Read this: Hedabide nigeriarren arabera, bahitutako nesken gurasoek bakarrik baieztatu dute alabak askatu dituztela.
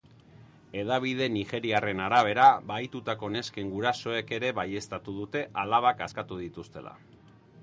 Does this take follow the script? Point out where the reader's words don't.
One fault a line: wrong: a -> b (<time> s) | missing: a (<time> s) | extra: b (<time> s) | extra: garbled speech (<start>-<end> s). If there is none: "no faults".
wrong: bakarrik -> ere (4.4 s)